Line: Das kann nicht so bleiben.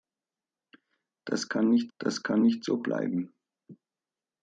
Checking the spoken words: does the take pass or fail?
fail